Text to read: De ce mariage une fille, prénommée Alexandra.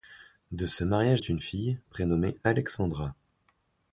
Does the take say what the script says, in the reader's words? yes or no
yes